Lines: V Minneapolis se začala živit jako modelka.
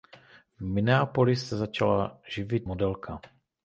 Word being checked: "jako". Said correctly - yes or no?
no